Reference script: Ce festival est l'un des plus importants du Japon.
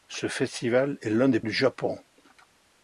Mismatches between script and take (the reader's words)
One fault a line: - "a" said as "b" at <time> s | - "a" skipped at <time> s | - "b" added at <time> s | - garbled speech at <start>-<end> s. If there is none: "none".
- "plus importants" skipped at 1.4 s